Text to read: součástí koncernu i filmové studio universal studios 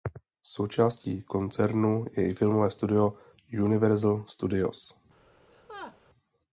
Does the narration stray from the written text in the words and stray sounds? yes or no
yes